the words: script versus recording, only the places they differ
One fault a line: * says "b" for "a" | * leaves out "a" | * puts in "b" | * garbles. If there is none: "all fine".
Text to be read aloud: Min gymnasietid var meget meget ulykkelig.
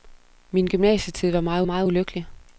all fine